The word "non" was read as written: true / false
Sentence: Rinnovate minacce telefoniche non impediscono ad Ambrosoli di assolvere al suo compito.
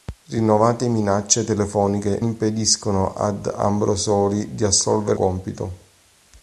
false